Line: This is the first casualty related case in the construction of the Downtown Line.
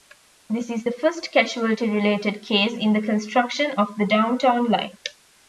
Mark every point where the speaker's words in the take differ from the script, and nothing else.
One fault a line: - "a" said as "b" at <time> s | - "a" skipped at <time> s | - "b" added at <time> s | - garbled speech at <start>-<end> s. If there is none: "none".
none